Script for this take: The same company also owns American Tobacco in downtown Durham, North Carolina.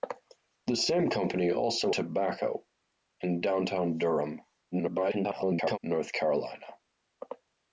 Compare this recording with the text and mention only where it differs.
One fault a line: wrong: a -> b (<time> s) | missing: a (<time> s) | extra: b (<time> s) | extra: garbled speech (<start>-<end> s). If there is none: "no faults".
missing: owns American (1.9 s)
extra: garbled speech (4.7-5.8 s)